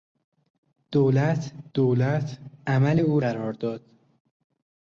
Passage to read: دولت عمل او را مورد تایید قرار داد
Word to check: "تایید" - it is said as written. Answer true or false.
false